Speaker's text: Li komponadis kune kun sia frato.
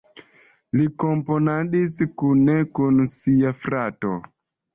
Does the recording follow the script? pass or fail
pass